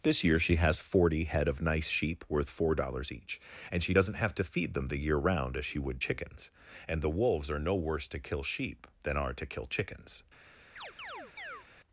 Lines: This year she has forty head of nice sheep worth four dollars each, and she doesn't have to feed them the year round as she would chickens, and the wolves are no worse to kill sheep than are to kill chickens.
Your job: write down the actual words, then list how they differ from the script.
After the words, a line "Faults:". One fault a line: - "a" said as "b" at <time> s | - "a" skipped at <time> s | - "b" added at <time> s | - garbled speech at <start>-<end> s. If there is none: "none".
This year she has forty head of nice sheep worth four dollars each, and she doesn't have to feed them the year round as she would chickens, and the wolves are no worse to kill sheep than are to kill chickens.
Faults:
none